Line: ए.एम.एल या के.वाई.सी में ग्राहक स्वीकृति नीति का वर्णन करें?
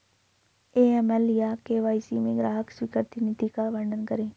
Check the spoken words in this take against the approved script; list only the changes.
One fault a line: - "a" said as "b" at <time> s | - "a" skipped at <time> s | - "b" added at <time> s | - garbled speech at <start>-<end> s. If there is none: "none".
none